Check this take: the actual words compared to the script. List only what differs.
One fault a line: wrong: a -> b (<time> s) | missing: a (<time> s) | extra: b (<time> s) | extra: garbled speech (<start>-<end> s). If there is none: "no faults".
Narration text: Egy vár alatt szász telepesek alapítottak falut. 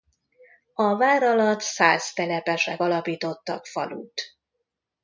wrong: Egy -> A (0.7 s)